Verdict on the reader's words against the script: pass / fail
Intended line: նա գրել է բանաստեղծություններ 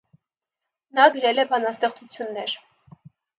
pass